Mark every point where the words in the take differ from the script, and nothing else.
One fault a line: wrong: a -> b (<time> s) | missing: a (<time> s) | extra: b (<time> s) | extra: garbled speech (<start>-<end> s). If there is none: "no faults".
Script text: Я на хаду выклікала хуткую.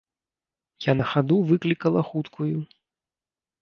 no faults